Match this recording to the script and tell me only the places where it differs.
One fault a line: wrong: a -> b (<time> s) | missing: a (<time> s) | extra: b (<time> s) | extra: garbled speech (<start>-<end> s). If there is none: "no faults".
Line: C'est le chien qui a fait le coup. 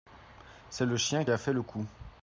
missing: qui (1.2 s)